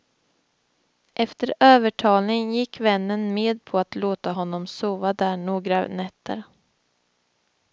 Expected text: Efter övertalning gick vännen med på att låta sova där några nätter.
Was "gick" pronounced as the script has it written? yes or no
yes